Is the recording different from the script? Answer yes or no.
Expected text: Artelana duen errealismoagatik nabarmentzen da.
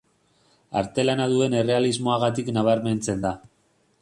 no